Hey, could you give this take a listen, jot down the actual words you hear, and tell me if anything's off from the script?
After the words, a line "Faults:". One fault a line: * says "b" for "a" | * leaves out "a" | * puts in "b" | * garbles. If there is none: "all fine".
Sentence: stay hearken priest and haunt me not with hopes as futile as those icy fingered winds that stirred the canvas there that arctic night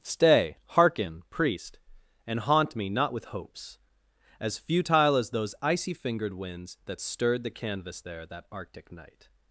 stay hearken priest and haunt me not with hopes as futile as those icy fingered winds that stirred the canvas there that arctic night
Faults:
all fine